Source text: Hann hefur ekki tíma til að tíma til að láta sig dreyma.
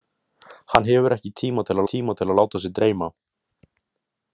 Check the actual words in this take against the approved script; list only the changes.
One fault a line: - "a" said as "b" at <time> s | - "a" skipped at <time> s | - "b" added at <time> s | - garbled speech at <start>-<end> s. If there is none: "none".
none